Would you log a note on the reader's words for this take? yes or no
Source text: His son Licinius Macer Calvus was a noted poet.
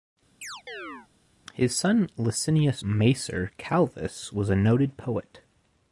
no